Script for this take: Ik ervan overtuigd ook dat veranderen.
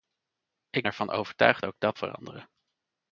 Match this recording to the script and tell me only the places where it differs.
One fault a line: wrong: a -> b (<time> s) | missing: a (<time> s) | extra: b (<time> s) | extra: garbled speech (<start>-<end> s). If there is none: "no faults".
no faults